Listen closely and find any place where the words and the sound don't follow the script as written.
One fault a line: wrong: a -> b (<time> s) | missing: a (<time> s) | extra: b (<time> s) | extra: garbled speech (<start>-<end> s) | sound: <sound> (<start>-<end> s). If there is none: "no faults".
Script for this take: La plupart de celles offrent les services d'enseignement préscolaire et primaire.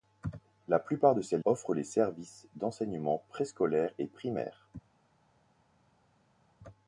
no faults